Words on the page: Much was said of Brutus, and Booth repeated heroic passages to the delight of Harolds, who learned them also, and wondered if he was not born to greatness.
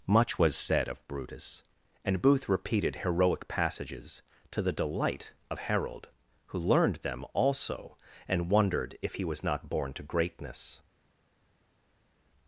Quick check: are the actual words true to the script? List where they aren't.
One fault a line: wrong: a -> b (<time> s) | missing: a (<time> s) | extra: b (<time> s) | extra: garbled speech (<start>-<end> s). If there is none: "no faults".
wrong: Harolds -> Harold (5.6 s)